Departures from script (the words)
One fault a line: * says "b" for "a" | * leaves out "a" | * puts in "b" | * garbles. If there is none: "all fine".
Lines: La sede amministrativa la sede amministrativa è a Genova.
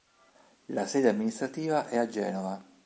* leaves out "la sede amministrativa"